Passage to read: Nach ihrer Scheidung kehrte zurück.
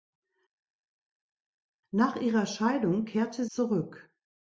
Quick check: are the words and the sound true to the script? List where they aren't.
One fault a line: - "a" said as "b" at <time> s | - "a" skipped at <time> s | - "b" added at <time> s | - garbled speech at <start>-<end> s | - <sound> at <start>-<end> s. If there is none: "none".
none